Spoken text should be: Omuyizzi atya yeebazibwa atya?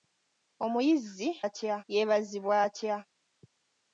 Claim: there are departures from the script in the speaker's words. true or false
false